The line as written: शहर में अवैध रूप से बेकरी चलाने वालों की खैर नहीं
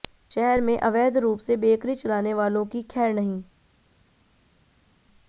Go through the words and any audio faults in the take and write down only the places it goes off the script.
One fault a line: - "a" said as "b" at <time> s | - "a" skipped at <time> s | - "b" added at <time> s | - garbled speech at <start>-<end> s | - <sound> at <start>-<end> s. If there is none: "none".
none